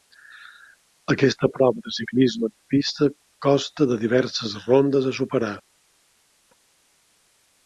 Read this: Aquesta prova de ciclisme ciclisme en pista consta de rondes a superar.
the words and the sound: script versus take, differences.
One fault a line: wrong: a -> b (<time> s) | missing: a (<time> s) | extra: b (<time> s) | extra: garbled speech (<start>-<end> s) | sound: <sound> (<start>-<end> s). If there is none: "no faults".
missing: ciclisme (2.5 s)
extra: diverses (4.1 s)